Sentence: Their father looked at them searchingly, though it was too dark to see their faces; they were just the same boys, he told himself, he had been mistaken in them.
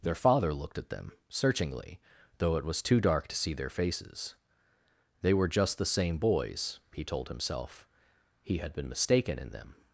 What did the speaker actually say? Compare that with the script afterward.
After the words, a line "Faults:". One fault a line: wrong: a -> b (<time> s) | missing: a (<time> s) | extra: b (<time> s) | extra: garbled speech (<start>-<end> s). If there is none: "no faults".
Their father looked at them searchingly, though it was too dark to see their faces; they were just the same boys, he told himself, he had been mistaken in them.
Faults:
no faults